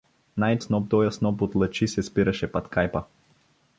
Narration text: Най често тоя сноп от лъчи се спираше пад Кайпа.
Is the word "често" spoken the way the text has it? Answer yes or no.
no